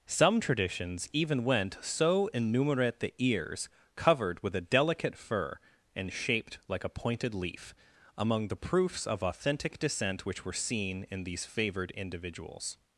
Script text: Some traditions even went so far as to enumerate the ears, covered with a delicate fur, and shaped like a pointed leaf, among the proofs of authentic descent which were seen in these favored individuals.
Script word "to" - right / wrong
wrong